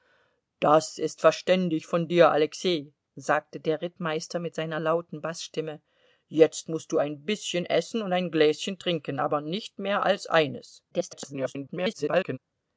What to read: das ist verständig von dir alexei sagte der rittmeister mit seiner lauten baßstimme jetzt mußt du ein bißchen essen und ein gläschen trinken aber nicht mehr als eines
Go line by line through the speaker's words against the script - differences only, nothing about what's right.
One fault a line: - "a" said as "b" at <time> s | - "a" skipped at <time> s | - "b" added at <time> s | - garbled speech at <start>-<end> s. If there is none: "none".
- garbled speech at 10.9-12.4 s